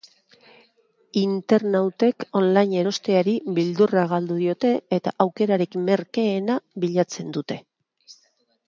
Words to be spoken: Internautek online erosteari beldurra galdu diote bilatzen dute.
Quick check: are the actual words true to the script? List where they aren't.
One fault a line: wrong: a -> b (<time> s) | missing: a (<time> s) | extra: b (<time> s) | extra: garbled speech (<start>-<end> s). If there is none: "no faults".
extra: eta aukerarik merkeena (5.0 s)